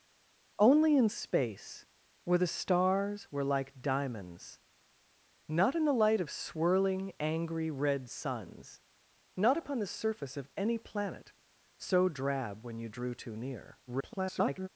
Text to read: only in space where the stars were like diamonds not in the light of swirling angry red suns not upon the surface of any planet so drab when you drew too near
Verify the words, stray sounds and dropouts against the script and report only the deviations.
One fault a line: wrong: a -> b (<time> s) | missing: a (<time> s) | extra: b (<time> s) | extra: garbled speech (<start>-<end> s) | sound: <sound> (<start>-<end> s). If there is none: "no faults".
extra: garbled speech (13.9-14.7 s)